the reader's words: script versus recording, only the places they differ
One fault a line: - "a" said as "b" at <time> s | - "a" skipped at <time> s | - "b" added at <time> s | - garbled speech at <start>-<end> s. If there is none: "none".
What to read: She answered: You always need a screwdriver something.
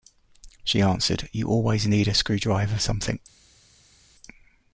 none